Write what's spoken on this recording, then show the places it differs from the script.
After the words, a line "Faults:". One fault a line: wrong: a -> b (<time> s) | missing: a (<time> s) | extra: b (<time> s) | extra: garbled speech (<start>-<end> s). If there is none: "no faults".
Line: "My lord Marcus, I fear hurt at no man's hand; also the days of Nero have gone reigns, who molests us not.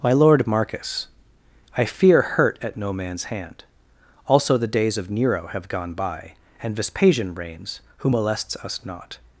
"My lord Marcus, I fear hurt at no man's hand; also the days of Nero have gone by and Vespasian reigns, who molests us not.
Faults:
extra: by and Vespasian (5.9 s)